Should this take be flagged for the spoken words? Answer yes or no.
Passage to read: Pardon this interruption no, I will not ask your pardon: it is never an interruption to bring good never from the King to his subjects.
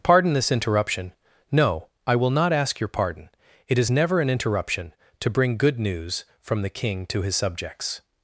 yes